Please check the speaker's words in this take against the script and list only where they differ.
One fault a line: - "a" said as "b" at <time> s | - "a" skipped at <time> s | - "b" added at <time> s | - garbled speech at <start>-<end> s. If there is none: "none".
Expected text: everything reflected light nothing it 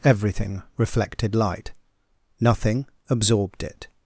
- "absorbed" added at 3.1 s